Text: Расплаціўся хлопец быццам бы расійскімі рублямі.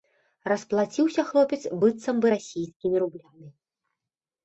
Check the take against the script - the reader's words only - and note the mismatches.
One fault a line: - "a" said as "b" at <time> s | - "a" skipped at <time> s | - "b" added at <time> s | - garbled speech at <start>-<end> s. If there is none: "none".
none